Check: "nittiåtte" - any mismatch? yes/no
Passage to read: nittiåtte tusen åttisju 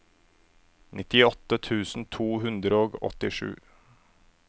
no